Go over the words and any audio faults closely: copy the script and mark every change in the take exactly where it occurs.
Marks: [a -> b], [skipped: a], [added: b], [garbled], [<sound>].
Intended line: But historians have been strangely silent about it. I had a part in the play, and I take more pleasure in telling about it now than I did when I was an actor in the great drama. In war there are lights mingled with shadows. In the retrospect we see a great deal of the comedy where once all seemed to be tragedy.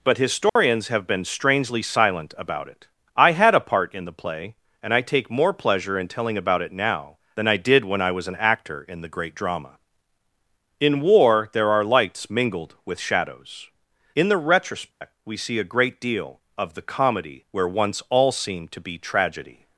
But historians [dropout] have been strangely silent about it. I had a part in the play, and I take more pleasure in telling about it now than I did when I was an actor in the great drama. In war there are lights mingled with shadows. In the retrospect [dropout] we see a great deal of the comedy where once all seemed to be tragedy.